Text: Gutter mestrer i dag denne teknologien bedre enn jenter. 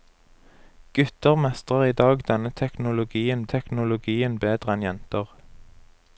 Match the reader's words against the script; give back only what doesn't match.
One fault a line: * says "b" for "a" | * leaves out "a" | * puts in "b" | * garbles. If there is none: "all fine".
* puts in "teknologien"